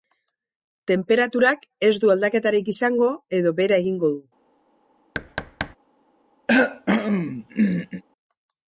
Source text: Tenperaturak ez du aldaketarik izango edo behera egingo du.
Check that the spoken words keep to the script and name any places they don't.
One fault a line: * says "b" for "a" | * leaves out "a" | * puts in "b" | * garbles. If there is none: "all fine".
all fine